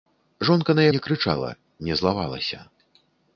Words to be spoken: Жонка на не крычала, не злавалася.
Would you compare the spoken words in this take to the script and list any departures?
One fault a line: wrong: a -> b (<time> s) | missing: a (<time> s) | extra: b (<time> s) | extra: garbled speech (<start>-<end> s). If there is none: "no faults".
no faults